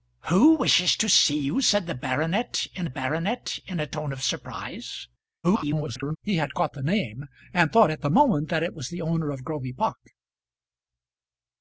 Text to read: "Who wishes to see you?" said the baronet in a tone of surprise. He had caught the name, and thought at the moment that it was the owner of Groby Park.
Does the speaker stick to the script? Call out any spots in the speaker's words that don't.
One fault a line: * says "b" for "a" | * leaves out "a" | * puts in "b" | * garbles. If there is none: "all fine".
* puts in "baronet in"
* garbles